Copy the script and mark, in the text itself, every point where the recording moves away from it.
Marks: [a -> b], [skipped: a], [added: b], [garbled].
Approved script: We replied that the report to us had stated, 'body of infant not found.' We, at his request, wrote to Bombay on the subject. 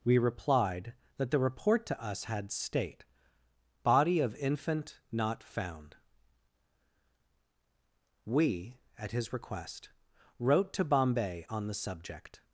We replied that the report to us had [stated, -> state] 'body of infant not found.' We, at his request, wrote to Bombay on the subject.